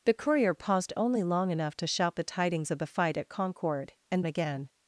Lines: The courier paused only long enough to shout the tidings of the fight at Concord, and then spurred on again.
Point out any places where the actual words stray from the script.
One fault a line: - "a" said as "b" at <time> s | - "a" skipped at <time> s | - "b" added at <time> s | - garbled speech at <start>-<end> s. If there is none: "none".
- "then spurred on" skipped at 4.2 s